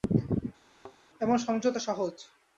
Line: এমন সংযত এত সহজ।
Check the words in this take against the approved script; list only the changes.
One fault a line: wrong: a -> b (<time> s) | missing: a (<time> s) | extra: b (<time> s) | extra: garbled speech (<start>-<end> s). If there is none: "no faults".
missing: এত (1.8 s)